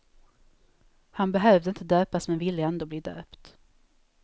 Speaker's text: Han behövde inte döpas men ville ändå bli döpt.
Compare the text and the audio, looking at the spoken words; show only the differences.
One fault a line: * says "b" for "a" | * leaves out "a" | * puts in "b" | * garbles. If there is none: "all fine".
all fine